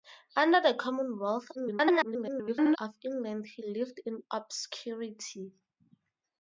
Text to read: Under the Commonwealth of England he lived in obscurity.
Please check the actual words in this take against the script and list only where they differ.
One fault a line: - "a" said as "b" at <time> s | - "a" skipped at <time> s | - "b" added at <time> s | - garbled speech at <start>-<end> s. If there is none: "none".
- garbled speech at 1.5-2.8 s